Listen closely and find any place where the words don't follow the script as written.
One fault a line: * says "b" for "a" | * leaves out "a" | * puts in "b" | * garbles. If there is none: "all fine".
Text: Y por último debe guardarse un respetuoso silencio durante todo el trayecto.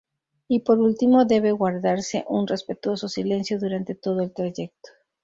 all fine